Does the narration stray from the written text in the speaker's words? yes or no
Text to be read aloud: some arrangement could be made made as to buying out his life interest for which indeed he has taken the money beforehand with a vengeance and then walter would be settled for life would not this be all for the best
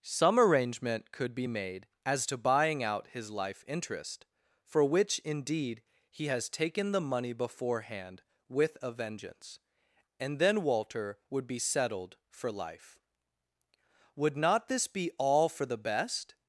yes